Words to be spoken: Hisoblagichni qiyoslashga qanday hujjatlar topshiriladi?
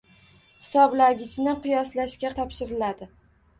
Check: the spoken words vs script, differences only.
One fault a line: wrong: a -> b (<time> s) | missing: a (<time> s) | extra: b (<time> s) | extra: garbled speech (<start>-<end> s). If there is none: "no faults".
missing: qanday hujjatlar (2.3 s)